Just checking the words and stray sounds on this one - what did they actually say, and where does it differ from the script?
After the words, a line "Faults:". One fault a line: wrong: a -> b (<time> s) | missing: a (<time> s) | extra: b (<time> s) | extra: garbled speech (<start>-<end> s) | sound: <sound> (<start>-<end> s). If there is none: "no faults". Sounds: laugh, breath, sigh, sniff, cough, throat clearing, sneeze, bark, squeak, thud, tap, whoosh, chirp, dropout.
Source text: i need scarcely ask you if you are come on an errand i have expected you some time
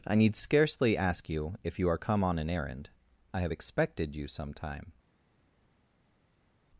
i need scarcely ask you if you are come on an errand i have expected you some time
Faults:
no faults